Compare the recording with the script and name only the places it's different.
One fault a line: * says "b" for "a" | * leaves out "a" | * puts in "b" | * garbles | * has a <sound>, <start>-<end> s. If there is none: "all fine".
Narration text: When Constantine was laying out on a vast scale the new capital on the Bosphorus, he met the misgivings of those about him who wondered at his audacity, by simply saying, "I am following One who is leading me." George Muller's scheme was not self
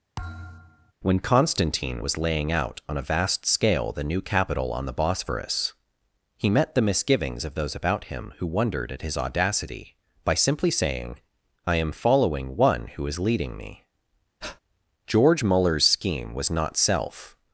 * has a thud, 0.2-0.9 s
* has a breath, 14.4-14.6 s